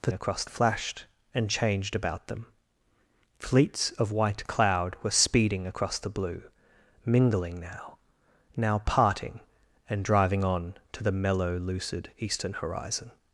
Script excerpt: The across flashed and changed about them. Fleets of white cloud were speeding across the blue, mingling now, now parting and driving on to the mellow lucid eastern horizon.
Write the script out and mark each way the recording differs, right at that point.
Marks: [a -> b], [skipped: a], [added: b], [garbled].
The across flashed and changed about them. Fleets of white cloud were speeding across the blue, mingling now, now parting and driving on to the mellow lucid eastern horizon.